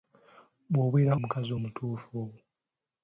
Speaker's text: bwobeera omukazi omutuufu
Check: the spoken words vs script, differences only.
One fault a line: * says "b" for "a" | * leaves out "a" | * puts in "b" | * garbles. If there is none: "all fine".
all fine